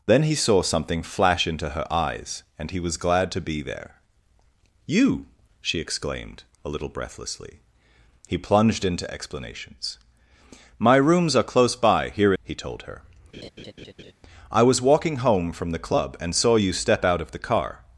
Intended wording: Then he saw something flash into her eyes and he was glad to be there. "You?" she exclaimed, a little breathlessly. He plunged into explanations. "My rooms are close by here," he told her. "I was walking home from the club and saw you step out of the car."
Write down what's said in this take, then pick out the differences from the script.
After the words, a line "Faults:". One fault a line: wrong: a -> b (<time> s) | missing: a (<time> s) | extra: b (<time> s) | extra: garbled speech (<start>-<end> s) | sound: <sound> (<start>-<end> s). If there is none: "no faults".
Then he saw something flash into her eyes and he was glad to be there. "You?" she exclaimed, a little breathlessly. He plunged into explanations. "My rooms are close by here," he told her. "I was walking home from the club and saw you step out of the car."
Faults:
sound: laugh (13.3-14.1 s)